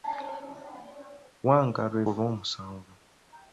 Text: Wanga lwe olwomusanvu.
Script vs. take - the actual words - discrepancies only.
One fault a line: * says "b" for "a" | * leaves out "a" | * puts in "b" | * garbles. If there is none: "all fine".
all fine